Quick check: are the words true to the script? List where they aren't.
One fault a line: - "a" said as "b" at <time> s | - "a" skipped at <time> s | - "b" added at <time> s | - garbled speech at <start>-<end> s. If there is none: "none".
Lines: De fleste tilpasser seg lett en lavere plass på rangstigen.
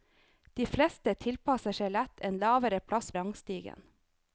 - "på" skipped at 3.1 s